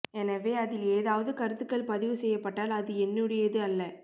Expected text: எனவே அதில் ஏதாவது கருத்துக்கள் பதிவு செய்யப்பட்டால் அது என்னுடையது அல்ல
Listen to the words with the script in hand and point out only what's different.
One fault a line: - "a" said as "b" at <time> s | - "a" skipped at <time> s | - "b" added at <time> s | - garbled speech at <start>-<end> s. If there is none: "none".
none